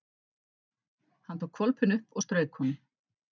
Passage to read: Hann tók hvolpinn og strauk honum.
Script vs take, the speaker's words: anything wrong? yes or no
yes